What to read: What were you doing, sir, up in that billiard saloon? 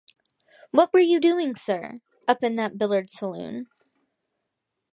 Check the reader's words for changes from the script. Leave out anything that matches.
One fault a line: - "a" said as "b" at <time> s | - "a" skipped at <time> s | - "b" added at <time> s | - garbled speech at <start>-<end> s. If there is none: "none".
none